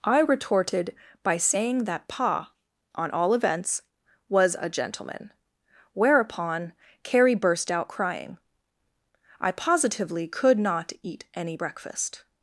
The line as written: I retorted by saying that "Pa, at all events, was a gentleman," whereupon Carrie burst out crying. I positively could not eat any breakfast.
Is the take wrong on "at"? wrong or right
wrong